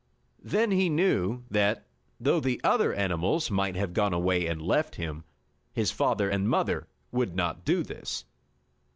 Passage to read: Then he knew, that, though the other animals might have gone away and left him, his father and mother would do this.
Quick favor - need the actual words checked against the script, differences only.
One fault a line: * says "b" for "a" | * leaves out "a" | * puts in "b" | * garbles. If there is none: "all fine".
* puts in "not"